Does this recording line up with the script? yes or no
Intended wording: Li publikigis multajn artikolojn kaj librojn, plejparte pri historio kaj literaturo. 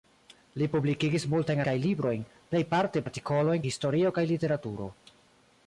no